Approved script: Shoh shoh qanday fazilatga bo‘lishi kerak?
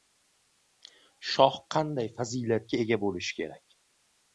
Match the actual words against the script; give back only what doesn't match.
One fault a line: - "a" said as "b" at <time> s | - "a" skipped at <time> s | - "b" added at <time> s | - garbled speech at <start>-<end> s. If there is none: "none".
- "shoh" skipped at 1.6 s
- "ega" added at 2.9 s